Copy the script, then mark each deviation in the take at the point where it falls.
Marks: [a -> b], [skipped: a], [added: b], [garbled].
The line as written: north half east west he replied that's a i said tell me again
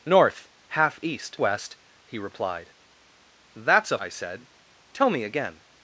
north half east west he replied that's a i said tell me again